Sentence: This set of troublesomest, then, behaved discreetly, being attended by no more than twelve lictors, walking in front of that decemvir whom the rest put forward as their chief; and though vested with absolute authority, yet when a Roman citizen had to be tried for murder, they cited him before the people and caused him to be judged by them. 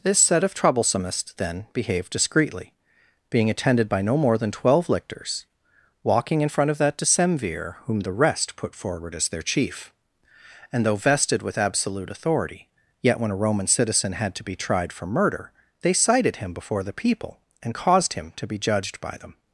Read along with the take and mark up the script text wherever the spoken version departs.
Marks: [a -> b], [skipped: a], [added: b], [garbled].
This set of troublesomest, then, behaved discreetly, being attended by no more than twelve lictors, walking in front of that decemvir whom the rest put forward as their chief; and though vested with absolute authority, yet when a Roman citizen had to be tried for murder, they cited him before the people and caused him to be judged by them.